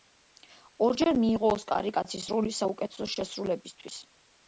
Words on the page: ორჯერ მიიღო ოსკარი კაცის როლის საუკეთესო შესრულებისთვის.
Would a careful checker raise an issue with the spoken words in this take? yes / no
no